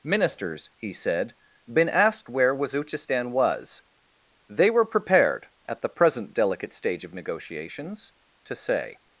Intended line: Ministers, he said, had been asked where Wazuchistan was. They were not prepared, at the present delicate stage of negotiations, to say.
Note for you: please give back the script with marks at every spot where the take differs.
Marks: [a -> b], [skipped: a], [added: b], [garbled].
Ministers, he said, [skipped: had] been asked where Wazuchistan was. They were [skipped: not] prepared, at the present delicate stage of negotiations, to say.